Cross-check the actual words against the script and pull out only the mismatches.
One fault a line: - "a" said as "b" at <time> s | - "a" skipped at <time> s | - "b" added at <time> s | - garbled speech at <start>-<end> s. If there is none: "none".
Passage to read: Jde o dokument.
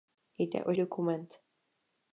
none